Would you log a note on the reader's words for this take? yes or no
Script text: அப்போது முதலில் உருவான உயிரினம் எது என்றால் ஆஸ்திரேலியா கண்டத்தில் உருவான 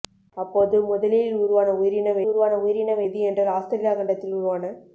yes